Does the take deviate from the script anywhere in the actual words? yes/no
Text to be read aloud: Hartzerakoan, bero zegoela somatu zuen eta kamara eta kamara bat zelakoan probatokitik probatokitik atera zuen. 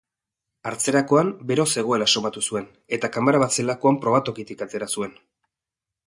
yes